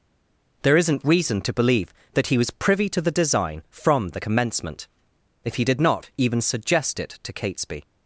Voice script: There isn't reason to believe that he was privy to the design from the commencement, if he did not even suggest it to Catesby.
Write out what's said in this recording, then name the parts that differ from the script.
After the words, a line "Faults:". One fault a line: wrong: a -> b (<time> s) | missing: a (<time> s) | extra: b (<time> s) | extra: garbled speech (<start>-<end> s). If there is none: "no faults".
There isn't reason to believe that he was privy to the design from the commencement, if he did not even suggest it to Catesby.
Faults:
no faults